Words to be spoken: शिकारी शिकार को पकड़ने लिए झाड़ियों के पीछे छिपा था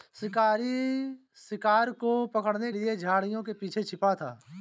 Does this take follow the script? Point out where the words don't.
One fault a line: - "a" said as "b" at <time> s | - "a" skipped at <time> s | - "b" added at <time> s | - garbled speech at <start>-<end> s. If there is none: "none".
none